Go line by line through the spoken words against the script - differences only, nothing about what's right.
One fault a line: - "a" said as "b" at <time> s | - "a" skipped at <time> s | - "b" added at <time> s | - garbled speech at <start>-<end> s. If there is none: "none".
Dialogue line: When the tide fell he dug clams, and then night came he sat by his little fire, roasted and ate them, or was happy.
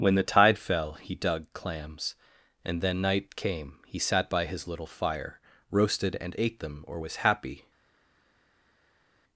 none